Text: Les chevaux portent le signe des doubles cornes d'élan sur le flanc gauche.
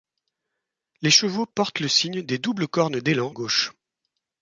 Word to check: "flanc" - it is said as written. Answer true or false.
false